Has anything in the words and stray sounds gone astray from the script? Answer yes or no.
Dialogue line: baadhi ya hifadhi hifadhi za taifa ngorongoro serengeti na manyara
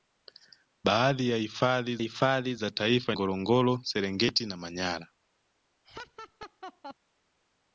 yes